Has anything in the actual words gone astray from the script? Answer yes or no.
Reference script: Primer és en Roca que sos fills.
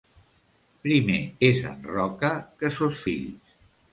no